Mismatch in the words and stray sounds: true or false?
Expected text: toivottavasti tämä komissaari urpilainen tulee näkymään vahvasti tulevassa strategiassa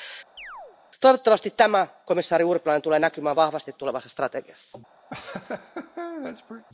true